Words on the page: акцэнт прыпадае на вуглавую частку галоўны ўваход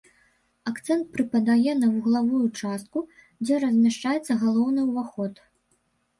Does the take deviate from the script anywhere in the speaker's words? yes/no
yes